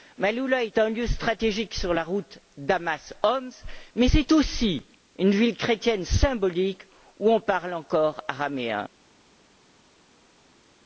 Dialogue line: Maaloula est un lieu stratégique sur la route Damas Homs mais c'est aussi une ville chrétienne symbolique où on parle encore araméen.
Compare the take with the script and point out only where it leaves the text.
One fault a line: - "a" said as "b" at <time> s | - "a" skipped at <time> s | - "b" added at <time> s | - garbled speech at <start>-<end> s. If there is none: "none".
none